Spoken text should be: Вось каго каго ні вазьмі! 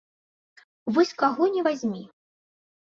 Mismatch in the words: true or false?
true